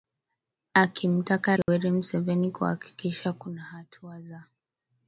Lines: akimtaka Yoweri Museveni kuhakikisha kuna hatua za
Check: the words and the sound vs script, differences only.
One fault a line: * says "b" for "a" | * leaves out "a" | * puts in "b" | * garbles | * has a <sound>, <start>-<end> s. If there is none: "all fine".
* has a dropout, 1.6-1.7 s